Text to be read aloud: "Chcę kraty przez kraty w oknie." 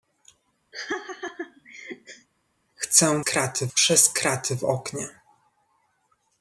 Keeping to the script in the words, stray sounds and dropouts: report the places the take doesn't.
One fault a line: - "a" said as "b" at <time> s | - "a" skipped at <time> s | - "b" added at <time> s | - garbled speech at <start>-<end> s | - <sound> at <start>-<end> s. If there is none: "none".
- laugh at 0.7-2.3 s